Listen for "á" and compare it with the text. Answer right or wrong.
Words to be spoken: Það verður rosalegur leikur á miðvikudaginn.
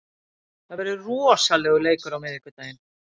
right